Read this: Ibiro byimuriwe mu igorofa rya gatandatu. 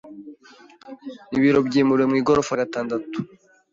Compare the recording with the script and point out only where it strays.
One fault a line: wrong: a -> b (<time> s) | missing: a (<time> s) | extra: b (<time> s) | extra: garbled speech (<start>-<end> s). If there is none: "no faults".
missing: rya (2.5 s)